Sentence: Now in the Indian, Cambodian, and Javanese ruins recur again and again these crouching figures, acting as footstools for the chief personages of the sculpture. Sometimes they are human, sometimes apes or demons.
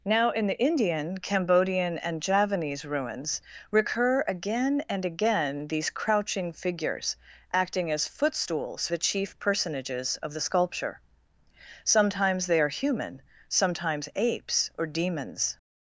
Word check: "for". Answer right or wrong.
wrong